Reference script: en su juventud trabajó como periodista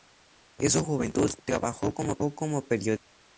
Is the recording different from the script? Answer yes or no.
no